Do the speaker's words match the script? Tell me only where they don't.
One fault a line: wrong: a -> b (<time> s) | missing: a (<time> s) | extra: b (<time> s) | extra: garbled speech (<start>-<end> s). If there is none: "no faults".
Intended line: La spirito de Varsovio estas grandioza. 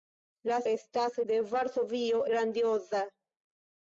wrong: spirito -> estas (0.7 s)
missing: estas (2.2 s)